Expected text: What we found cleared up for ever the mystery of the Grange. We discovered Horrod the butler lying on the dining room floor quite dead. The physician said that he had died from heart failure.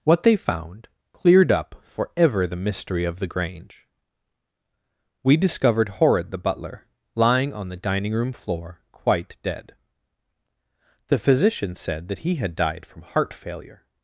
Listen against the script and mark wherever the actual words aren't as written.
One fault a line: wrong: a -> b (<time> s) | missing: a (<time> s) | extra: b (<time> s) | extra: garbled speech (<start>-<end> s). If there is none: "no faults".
wrong: we -> they (0.2 s)